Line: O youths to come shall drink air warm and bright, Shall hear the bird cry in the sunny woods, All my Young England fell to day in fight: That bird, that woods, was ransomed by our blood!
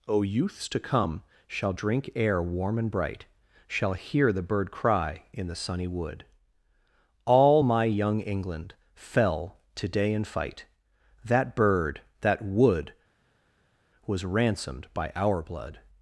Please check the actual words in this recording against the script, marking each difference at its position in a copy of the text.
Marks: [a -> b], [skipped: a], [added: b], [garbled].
O youths to come shall drink air warm and bright, Shall hear the bird cry in the sunny [woods, -> wood] All my Young England fell to day in fight: That bird, that [woods, -> wood] was ransomed by our blood!